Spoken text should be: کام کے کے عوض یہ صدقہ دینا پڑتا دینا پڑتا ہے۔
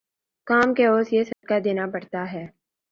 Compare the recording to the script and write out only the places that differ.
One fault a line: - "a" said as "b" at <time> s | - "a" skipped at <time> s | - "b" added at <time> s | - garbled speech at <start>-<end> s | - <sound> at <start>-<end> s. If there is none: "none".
- "کے" skipped at 0.8 s
- dropout at 1.3-1.4 s
- "دینا پڑتا" skipped at 2.3 s